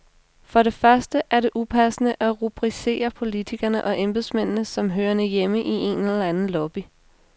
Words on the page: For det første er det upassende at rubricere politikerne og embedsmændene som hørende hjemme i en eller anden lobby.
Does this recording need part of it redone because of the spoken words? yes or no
no